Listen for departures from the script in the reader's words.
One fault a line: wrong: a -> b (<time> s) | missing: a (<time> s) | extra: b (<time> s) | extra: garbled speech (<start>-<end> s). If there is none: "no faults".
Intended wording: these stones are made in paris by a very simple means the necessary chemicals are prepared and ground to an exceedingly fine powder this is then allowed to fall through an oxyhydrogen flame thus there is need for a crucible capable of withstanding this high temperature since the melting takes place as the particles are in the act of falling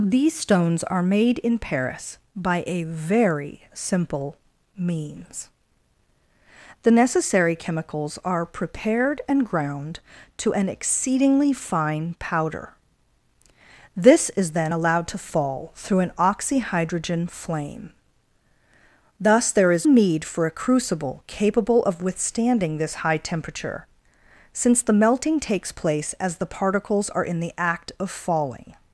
no faults